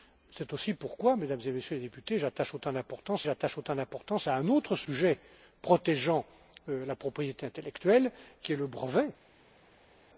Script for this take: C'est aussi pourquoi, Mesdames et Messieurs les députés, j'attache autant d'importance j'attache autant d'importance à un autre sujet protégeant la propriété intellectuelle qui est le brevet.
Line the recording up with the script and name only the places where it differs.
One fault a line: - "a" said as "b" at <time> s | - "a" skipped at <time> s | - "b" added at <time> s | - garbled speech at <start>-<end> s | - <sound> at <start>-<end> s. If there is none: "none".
none